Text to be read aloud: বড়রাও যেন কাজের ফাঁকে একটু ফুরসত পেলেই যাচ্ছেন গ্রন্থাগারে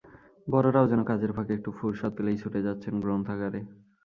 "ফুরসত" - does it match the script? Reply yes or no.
yes